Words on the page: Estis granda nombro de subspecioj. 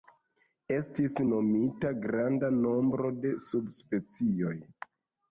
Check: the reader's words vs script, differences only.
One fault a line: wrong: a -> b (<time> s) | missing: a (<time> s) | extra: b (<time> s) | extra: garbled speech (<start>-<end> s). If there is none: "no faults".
extra: nomita (1.3 s)